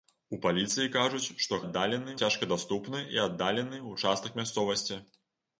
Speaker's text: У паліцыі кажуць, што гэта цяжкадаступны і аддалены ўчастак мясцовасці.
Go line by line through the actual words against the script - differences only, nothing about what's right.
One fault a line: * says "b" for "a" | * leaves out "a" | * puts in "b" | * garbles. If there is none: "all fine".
* says "аддалены" for "гэта"